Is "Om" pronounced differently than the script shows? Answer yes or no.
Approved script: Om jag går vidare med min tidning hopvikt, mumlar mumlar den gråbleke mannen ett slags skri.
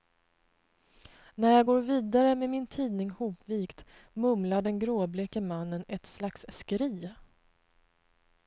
yes